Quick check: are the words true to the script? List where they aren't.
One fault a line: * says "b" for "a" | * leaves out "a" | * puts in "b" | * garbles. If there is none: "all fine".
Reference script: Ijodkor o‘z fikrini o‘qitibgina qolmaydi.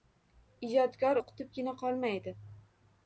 * leaves out "o‘z fikrini"